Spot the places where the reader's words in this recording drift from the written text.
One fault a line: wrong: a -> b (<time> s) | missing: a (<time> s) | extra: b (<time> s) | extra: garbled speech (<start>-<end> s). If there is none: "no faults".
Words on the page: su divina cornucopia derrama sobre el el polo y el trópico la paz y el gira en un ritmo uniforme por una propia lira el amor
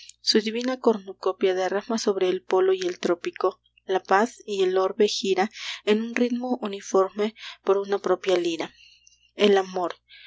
missing: el (2.4 s)
extra: orbe (4.8 s)